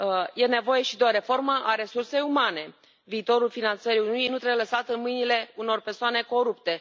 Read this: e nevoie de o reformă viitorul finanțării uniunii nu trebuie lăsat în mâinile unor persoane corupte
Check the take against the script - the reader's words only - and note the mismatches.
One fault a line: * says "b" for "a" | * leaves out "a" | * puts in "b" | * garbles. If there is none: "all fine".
* puts in "și"
* puts in "a resursei umane"